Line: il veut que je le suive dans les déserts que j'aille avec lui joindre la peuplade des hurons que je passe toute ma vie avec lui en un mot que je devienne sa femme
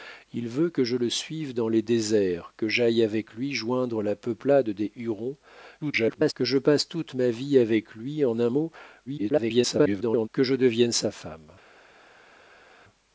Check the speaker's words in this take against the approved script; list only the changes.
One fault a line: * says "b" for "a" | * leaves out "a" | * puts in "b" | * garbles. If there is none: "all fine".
* garbles
* garbles